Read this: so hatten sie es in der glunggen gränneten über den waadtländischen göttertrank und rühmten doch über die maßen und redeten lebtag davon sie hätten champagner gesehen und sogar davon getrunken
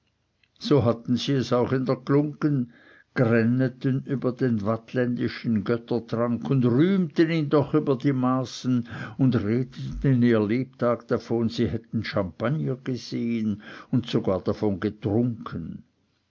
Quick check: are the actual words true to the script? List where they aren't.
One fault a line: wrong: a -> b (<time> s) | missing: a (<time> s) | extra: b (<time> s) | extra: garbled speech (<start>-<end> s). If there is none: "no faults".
extra: auch (1.5 s)
extra: ihn (7.3 s)
extra: ihr (10.2 s)